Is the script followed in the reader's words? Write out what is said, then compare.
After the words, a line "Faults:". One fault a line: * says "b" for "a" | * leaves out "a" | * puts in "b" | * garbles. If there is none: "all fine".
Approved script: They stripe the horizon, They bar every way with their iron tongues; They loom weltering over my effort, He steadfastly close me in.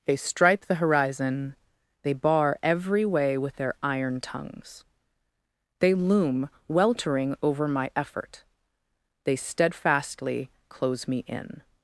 They stripe the horizon, They bar every way with their iron tongues; They loom weltering over my effort, They steadfastly close me in.
Faults:
* says "They" for "He"